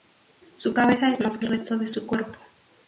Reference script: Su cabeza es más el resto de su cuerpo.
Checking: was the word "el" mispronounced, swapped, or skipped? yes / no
no